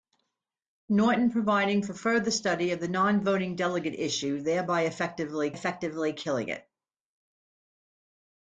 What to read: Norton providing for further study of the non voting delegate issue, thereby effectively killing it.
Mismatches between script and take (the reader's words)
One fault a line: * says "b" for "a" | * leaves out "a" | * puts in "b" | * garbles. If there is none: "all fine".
* puts in "effectively"